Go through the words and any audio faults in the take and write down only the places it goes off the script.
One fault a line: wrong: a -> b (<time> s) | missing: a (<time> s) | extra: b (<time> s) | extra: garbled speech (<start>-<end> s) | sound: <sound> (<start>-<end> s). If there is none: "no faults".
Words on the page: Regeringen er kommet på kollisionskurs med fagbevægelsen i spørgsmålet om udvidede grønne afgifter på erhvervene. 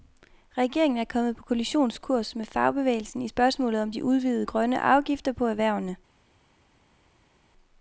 extra: de (3.9 s)